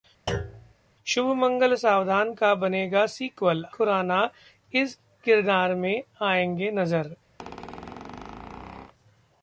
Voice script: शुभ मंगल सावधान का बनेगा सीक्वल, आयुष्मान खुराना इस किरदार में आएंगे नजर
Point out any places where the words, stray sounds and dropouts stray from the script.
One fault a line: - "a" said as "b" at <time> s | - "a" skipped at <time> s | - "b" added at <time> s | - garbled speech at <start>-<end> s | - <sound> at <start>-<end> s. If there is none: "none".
- thud at 0.3-0.7 s
- "आयुष्मान" skipped at 3.6 s
- squeak at 7.4-8.9 s